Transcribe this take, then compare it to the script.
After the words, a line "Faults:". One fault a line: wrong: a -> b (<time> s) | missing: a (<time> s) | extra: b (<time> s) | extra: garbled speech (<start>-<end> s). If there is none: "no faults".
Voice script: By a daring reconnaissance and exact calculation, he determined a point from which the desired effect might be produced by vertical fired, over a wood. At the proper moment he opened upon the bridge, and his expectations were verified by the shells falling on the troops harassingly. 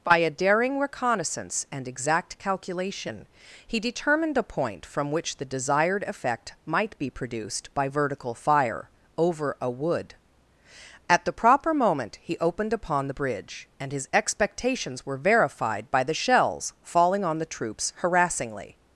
By a daring reconnaissance and exact calculation, he determined a point from which the desired effect might be produced by vertical fire, over a wood. At the proper moment he opened upon the bridge, and his expectations were verified by the shells falling on the troops harassingly.
Faults:
wrong: fired -> fire (8.3 s)